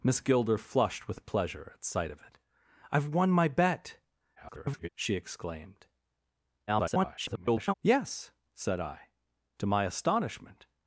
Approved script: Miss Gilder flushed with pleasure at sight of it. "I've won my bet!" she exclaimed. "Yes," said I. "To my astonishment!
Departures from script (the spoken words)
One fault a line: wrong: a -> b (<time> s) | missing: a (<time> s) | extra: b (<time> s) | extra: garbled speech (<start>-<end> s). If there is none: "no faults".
extra: garbled speech (4.4-4.9 s)
extra: garbled speech (6.7-7.7 s)